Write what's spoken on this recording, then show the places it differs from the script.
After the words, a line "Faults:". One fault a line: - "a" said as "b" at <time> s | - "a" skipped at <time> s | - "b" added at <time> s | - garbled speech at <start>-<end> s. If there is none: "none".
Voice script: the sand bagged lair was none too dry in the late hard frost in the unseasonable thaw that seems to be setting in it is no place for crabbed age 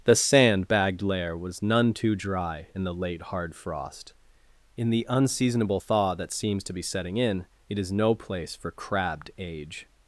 the sand bagged lair was none too dry in the late hard frost in the unseasonable thaw that seems to be setting in it is no place for crabbed age
Faults:
none